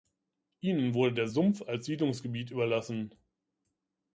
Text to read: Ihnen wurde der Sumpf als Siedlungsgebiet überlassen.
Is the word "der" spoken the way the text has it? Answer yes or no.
yes